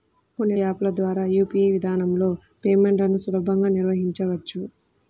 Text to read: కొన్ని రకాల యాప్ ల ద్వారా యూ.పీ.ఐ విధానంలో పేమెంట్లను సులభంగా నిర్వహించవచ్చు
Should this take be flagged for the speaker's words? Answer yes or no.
yes